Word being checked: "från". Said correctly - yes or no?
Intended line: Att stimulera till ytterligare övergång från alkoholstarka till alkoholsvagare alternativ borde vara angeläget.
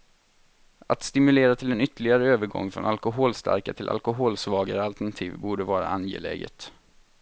yes